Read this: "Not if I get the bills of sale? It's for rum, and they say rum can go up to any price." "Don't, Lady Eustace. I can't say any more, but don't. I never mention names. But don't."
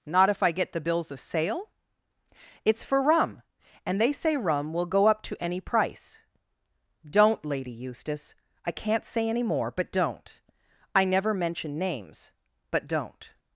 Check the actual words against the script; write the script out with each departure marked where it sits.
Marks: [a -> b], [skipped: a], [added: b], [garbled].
"Not if I get the bills of sale? It's for rum, and they say rum [can -> will] go up to any price." "Don't, Lady Eustace. I can't say any more, but don't. I never mention names. But don't."